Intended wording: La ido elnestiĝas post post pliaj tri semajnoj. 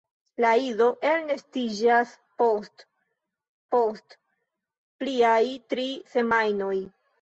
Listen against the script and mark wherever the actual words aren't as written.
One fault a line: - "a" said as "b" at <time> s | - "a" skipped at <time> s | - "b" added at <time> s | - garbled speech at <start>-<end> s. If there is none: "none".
none